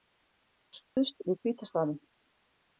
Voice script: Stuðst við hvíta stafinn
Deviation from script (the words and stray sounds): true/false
true